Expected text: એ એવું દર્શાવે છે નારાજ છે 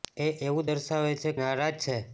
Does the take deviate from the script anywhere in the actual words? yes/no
no